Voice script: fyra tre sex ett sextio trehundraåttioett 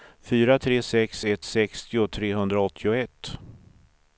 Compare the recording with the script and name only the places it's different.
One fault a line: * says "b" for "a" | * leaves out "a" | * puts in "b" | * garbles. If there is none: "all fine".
all fine